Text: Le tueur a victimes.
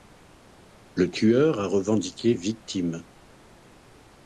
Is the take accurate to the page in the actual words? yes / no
no